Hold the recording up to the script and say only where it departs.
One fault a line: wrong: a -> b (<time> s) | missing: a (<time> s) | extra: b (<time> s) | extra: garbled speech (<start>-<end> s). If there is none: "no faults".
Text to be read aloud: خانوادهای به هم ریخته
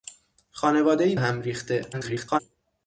missing: به (1.1 s)
extra: garbled speech (1.9-2.4 s)